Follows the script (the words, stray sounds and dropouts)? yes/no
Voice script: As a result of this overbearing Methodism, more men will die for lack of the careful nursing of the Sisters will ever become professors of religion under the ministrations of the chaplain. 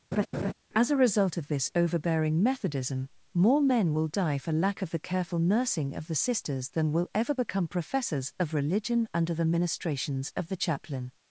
no